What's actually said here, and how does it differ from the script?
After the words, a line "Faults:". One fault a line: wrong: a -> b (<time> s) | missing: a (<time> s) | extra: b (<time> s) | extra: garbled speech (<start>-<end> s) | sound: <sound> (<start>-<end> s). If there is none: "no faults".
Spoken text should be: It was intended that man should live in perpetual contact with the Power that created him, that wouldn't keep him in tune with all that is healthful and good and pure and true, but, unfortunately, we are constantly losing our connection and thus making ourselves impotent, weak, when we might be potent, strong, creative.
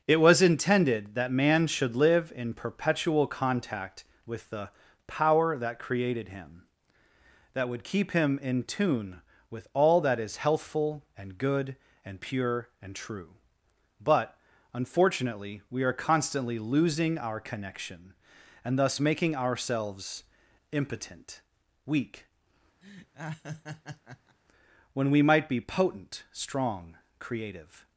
It was intended that man should live in perpetual contact with the Power that created him, that would keep him in tune with all that is healthful and good and pure and true, but, unfortunately, we are constantly losing our connection and thus making ourselves impotent, weak, when we might be potent, strong, creative.
Faults:
wrong: wouldn't -> would (7.7 s)
sound: laugh (22.8-24.4 s)